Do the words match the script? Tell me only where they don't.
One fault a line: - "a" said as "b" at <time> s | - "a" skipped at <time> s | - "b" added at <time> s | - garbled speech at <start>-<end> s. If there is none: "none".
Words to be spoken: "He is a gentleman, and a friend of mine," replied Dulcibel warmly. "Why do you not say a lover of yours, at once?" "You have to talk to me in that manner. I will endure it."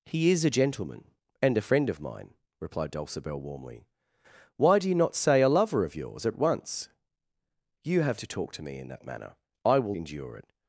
none